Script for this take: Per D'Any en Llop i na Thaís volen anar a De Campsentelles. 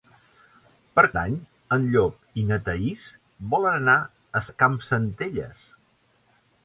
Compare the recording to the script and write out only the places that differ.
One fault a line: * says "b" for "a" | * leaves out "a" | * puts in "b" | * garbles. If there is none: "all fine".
all fine